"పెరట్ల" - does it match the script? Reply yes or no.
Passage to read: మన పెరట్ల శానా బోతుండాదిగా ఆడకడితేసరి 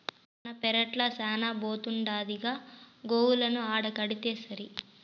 yes